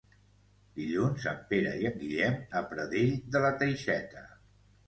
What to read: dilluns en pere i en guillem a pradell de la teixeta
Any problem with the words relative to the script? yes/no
no